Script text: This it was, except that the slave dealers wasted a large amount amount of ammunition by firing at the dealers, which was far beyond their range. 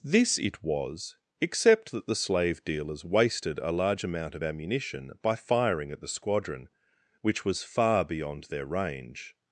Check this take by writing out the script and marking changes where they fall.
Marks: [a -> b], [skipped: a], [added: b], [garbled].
This it was, except that the slave dealers wasted a large amount [skipped: amount] of ammunition by firing at the [dealers, -> squadron] which was far beyond their range.